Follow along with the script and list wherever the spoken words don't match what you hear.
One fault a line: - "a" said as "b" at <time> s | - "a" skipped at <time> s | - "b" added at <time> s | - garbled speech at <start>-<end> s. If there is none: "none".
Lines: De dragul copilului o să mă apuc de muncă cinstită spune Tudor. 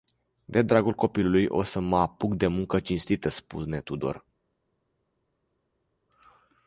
none